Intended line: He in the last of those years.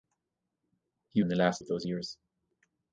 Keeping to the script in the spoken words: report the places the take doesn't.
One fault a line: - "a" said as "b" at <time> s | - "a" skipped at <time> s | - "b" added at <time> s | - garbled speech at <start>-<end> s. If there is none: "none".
none